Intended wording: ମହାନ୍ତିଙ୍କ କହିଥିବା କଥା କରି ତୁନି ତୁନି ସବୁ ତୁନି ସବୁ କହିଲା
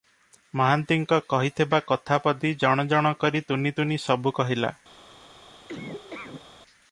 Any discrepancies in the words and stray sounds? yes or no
yes